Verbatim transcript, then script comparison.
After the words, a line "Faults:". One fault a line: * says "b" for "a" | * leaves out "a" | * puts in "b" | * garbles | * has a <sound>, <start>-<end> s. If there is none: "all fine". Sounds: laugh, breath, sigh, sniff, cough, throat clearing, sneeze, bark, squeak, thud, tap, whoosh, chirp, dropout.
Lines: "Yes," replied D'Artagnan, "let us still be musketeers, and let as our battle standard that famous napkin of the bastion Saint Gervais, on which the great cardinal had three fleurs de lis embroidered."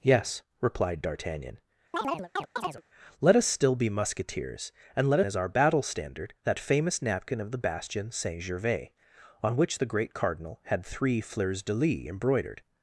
"Yes," replied D'Artagnan, "let us still be musketeers, and let as our battle standard that famous napkin of the bastion Saint Gervais, on which the great cardinal had three fleurs de lis embroidered."
Faults:
* has a chirp, 1.9-2.8 s